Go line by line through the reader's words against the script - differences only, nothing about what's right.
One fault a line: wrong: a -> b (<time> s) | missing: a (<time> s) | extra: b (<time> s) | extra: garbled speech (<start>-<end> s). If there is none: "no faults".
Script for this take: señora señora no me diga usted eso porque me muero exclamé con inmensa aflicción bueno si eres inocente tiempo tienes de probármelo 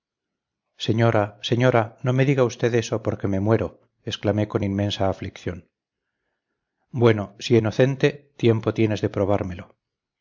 missing: eres (7.6 s)